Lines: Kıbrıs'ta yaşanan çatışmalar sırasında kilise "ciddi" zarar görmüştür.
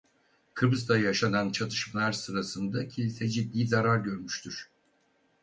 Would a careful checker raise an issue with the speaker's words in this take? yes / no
no